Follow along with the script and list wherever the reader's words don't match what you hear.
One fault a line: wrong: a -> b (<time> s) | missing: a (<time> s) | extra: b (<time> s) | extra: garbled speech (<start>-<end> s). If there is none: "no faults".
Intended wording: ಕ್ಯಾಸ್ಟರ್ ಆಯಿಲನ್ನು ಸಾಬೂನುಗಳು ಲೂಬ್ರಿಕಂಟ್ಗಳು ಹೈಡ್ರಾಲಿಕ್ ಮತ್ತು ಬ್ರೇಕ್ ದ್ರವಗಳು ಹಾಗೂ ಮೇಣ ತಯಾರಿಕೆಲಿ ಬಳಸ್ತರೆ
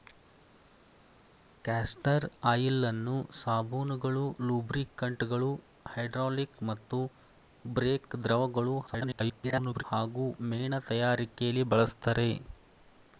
extra: garbled speech (8.9-9.8 s)